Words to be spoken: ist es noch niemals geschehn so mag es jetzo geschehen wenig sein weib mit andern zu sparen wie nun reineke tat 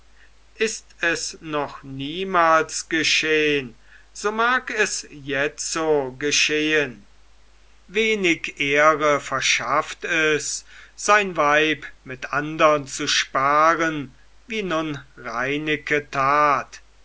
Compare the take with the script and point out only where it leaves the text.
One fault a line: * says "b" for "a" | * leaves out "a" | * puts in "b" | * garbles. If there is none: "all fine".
* puts in "ehre verschafft es"